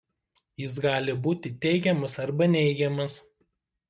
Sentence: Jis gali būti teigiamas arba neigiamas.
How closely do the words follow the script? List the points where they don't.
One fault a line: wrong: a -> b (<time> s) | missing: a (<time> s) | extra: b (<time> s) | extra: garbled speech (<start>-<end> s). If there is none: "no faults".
no faults